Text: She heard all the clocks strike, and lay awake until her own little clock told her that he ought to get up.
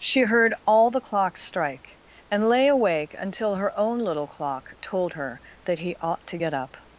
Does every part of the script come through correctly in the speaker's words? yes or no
yes